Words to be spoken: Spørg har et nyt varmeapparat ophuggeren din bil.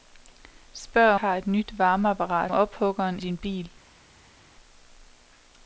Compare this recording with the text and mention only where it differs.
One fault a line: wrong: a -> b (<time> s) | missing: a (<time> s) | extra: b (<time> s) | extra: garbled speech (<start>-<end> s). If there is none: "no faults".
no faults